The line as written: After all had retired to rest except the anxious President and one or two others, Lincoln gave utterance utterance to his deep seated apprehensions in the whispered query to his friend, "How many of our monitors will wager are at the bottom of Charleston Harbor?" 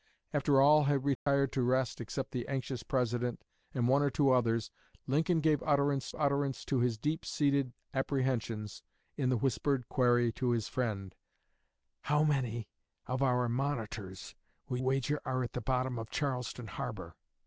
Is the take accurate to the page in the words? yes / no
yes